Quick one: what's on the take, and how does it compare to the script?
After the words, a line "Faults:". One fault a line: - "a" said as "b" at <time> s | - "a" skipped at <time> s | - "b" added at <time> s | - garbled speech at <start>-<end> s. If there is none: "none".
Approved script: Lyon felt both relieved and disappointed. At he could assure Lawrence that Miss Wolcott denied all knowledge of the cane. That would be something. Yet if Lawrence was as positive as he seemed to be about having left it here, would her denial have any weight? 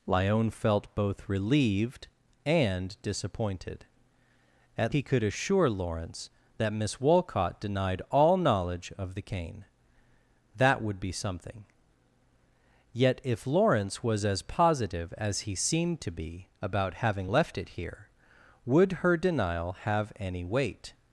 Lyon felt both relieved and disappointed. At he could assure Lawrence that Miss Wolcott denied all knowledge of the cane. That would be something. Yet if Lawrence was as positive as he seemed to be about having left it here, would her denial have any weight?
Faults:
none